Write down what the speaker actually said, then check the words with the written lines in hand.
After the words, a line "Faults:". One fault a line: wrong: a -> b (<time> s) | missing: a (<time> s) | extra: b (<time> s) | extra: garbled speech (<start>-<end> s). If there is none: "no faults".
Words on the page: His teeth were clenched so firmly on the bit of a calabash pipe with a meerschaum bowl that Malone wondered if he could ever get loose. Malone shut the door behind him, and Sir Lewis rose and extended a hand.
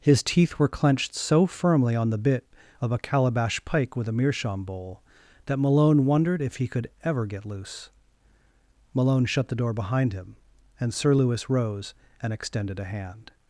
His teeth were clenched so firmly on the bit of a calabash pike with a meerschaum bowl that Malone wondered if he could ever get loose. Malone shut the door behind him, and Sir Lewis rose and extended a hand.
Faults:
wrong: pipe -> pike (3.6 s)